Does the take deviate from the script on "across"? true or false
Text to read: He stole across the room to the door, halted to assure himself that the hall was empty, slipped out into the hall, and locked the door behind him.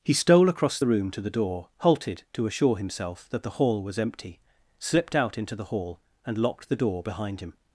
false